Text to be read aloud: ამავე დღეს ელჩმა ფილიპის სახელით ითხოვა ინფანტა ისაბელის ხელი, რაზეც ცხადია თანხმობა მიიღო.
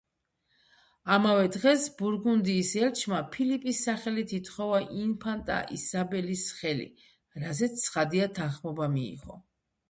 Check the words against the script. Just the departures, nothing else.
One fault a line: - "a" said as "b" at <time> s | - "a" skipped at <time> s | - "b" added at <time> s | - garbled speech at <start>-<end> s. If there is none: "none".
- "ბურგუნდიის" added at 2.0 s